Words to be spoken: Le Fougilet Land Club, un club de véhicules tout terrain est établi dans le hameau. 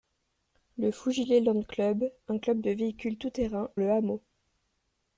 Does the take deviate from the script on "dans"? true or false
true